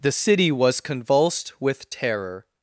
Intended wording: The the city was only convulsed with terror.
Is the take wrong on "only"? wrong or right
wrong